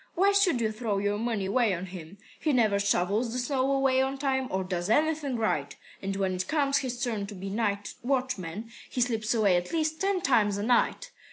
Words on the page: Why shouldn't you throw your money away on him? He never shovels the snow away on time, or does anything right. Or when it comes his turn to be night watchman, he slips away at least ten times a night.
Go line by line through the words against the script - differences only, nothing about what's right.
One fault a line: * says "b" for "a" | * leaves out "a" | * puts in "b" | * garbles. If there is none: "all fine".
* says "should" for "shouldn't"
* says "And" for "Or"